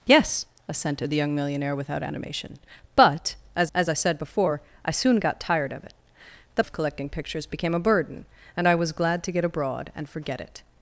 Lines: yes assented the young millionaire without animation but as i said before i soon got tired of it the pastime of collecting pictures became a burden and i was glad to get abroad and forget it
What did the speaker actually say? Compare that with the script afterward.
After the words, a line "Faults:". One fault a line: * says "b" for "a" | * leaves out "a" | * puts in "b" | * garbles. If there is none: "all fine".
yes assented the young millionaire without animation but as as i said before i soon got tired of it the of collecting pictures became a burden and i was glad to get abroad and forget it
Faults:
* puts in "as"
* leaves out "pastime"